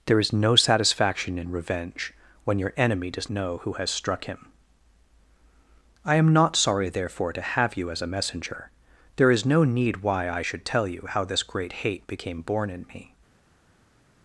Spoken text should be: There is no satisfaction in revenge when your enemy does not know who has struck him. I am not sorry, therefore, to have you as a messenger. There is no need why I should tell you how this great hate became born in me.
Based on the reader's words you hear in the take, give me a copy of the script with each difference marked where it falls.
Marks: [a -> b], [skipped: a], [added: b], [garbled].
There is no satisfaction in revenge when your enemy does [skipped: not] know who has struck him. I am not sorry, therefore, to have you as a messenger. There is no need why I should tell you how this great hate became born in me.